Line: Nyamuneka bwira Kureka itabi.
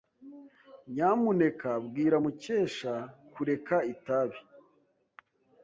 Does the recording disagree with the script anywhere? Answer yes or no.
yes